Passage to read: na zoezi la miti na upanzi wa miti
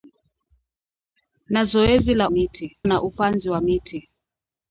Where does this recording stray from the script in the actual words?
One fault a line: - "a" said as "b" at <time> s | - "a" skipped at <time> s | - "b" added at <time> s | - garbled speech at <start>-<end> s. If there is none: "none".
none